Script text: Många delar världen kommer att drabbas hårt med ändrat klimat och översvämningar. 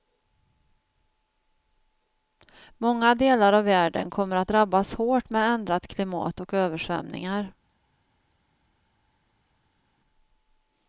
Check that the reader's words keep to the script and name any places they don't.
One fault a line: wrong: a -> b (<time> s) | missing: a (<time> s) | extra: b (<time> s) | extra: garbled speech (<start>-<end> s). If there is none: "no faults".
extra: av (3.5 s)